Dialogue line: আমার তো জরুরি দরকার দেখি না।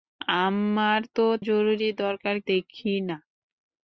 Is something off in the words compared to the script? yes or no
no